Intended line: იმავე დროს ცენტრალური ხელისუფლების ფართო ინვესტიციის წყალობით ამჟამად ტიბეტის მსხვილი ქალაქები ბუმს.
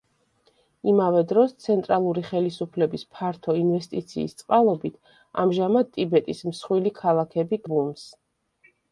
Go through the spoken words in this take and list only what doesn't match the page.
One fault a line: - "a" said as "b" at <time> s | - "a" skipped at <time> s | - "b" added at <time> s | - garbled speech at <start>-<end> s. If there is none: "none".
none